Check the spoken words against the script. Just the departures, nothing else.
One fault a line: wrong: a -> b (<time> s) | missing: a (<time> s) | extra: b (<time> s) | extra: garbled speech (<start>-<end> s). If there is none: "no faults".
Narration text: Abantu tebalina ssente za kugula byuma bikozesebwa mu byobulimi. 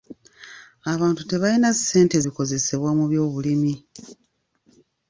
missing: za kugula byuma (2.2 s)